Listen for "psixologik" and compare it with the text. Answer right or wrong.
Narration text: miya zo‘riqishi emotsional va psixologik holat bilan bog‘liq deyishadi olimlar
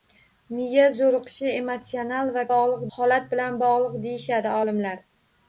wrong